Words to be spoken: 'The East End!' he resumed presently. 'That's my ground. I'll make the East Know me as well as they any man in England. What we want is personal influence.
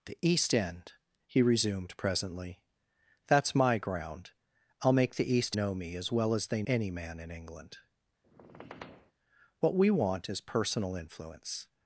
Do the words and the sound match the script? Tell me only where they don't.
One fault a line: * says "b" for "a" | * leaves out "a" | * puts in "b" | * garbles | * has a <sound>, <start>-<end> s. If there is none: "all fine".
* has a squeak, 8.2-9.1 s